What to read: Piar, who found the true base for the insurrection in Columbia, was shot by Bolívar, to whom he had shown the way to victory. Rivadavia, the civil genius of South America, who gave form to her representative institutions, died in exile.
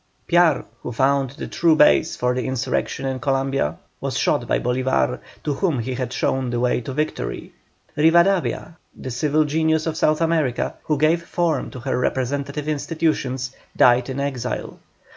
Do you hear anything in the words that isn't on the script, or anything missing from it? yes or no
no